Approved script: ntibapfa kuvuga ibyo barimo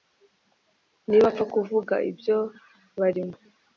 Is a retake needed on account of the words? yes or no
no